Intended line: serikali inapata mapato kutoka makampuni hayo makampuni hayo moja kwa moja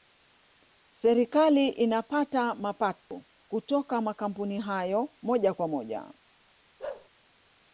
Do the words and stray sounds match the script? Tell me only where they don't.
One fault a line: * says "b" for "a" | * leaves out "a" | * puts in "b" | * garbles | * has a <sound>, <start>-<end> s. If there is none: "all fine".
* has a dropout, 3.0-3.1 s
* leaves out "makampuni hayo"
* has a bark, 6.8-7.1 s